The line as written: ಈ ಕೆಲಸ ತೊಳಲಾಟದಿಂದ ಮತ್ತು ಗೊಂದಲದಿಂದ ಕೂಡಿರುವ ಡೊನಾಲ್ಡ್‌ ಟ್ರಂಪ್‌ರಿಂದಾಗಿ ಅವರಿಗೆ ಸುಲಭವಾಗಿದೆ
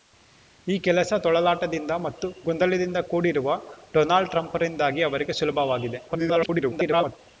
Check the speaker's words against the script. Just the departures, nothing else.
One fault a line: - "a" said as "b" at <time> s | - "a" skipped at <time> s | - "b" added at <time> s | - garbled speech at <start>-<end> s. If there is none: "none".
- garbled speech at 6.1-7.2 s